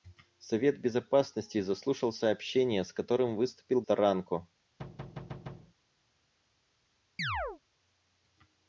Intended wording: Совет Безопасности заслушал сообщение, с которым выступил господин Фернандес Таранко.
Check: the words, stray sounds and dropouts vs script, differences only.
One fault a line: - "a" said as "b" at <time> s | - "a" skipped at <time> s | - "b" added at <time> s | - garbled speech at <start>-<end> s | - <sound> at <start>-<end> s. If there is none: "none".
- "господин Фернандес" skipped at 3.8 s
- thud at 4.8-5.7 s
- chirp at 7.2-7.6 s